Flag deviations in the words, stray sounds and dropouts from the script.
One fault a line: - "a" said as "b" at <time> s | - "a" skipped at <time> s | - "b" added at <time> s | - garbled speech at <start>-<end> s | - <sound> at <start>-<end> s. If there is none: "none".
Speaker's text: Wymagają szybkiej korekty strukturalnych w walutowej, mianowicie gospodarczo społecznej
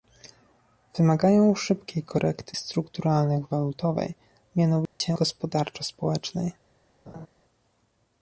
- dropout at 4.9-5.0 s
- laugh at 7.1-7.3 s